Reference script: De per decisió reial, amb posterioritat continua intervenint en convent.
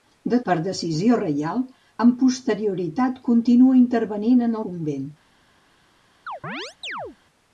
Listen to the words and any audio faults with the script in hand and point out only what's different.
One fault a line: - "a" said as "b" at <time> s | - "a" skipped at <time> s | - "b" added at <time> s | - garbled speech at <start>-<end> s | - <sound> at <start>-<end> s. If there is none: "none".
- chirp at 6.3-7.2 s